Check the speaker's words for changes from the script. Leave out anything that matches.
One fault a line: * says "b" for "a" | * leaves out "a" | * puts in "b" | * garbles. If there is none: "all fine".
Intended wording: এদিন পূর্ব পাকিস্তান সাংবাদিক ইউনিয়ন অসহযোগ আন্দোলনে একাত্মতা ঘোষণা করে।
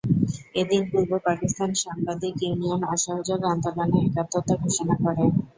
all fine